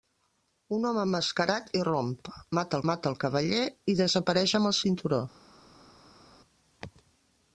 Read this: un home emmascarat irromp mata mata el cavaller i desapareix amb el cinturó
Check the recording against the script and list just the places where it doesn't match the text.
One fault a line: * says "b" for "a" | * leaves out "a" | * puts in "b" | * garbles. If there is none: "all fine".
all fine